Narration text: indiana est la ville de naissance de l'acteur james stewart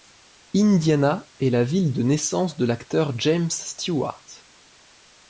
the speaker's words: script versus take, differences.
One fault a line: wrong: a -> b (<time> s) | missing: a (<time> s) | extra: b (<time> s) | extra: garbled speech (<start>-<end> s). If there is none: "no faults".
no faults